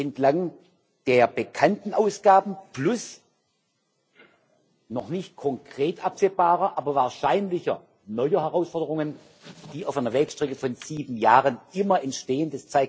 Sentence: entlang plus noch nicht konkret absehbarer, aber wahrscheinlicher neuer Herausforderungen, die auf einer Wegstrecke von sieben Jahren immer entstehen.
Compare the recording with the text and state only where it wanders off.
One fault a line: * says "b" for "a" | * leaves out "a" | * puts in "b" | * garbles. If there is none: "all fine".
* puts in "der bekannten Ausgaben"